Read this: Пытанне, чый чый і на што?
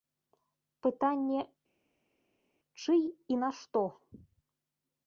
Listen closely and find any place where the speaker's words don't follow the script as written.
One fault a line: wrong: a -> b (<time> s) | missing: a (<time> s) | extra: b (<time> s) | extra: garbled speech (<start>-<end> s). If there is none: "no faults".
missing: чый (3.0 s)